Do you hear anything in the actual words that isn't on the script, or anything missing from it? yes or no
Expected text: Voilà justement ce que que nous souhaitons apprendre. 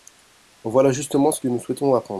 yes